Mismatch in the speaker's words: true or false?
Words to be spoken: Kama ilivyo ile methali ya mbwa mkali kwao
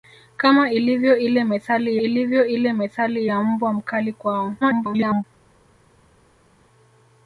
true